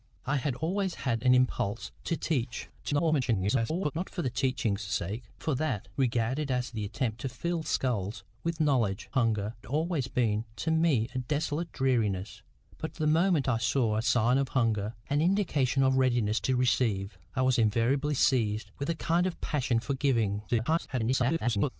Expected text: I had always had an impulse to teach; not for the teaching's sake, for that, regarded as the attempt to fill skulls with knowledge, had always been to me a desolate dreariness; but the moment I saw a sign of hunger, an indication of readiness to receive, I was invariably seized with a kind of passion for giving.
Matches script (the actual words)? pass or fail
fail